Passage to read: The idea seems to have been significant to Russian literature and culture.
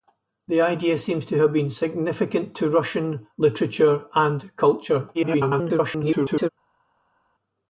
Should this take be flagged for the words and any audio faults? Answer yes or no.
yes